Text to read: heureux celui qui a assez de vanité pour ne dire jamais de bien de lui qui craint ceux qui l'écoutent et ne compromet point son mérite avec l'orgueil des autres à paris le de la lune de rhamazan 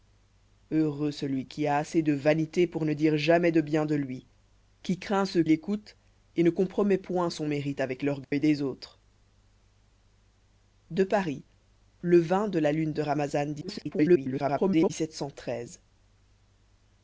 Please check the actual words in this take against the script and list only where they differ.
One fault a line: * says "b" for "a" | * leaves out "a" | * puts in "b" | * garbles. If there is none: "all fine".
* leaves out "qui"
* garbles